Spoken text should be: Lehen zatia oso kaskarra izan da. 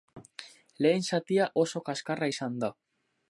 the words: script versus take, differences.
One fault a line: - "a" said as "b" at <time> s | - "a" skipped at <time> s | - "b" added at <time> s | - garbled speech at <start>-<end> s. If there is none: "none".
none